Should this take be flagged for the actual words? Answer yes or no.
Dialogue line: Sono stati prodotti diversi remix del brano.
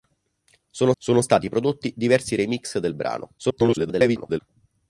yes